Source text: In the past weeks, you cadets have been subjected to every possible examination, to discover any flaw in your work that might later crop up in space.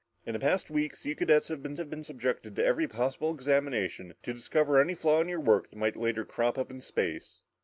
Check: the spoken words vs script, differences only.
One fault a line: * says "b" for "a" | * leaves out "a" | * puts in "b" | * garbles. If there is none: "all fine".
* puts in "have been"